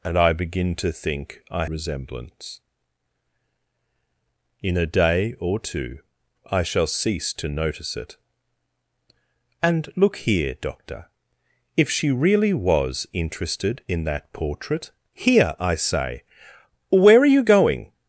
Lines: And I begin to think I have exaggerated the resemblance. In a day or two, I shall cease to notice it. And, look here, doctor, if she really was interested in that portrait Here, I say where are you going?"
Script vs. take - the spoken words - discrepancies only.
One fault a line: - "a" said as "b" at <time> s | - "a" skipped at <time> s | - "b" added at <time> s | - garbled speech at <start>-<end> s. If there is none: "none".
- "have exaggerated the" skipped at 1.6 s